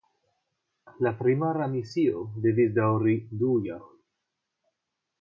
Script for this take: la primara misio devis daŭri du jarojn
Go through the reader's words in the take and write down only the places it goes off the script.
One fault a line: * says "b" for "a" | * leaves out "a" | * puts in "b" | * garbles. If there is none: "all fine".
all fine